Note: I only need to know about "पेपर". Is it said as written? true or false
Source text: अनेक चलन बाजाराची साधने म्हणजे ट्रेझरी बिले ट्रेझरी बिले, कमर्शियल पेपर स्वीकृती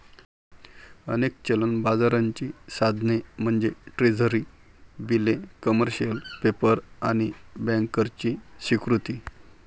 false